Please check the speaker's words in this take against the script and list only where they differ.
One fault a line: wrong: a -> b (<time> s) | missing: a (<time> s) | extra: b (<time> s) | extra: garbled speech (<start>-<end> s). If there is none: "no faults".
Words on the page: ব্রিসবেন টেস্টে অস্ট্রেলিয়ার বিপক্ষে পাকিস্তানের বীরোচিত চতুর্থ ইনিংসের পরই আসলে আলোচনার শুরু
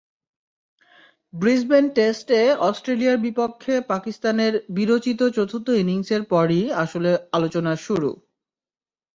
no faults